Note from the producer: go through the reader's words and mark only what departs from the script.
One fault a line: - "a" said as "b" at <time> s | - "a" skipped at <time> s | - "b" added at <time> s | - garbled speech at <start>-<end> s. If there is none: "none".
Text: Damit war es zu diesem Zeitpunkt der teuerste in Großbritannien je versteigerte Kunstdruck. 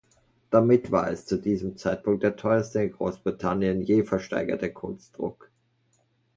none